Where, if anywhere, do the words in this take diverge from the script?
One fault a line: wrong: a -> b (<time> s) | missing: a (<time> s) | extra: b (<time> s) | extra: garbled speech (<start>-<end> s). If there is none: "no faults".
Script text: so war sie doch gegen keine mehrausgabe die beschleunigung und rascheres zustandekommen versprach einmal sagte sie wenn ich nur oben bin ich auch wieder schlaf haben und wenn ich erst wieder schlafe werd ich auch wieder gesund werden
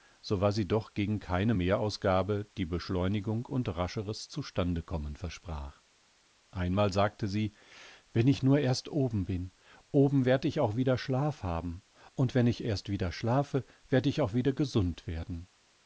extra: erst (8.6 s)
extra: oben werd (9.9 s)